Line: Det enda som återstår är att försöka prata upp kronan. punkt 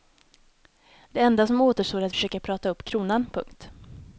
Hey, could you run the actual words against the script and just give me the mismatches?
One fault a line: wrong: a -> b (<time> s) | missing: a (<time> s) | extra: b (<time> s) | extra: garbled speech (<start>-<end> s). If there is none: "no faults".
no faults